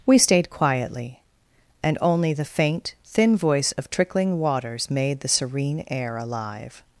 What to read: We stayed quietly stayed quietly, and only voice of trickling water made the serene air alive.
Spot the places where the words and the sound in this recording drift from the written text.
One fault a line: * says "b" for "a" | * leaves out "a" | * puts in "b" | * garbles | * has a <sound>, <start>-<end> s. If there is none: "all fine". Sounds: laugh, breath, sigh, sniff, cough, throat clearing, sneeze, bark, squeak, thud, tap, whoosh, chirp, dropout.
* says "and only the faint thin" for "stayed quietly and only"
* says "waters" for "water"